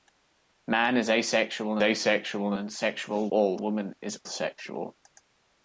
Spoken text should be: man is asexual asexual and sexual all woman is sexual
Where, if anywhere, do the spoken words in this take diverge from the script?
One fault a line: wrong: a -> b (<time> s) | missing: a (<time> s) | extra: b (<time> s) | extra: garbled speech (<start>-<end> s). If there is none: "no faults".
no faults